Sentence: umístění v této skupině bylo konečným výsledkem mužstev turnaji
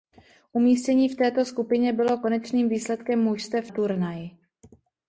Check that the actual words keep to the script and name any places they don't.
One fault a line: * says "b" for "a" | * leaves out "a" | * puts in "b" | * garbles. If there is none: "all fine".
all fine